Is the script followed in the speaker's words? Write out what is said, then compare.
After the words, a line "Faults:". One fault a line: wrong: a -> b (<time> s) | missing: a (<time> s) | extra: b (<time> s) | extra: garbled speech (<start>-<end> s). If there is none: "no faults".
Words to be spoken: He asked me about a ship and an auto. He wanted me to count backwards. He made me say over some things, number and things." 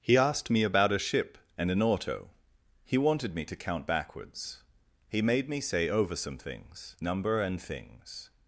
He asked me about a ship and an auto. He wanted me to count backwards. He made me say over some things, number and things."
Faults:
no faults